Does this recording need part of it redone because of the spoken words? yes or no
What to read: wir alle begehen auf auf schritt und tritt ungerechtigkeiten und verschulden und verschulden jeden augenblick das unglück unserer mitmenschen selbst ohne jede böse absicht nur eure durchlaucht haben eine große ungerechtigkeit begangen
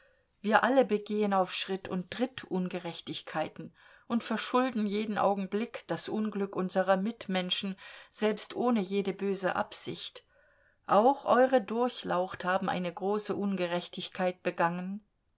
yes